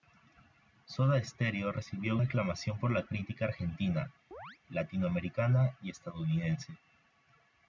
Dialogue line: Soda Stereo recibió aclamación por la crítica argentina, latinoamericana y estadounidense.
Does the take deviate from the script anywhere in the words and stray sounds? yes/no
yes